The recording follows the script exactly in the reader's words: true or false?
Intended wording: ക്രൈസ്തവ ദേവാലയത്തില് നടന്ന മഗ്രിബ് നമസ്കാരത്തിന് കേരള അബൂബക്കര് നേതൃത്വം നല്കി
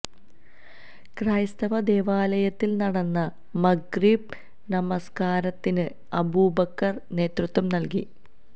false